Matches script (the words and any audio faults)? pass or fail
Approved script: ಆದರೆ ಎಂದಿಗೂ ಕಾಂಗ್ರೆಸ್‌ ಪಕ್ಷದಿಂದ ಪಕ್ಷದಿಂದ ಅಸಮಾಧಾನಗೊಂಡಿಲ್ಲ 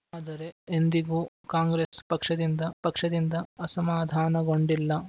fail